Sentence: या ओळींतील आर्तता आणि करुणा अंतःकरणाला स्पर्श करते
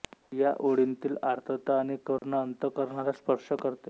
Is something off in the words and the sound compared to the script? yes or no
yes